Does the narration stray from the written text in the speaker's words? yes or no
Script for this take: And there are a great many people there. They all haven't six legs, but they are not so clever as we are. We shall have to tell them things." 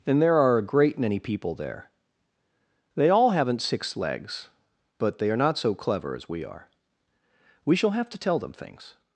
no